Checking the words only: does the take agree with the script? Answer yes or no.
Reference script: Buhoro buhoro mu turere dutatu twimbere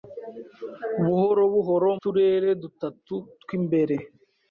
no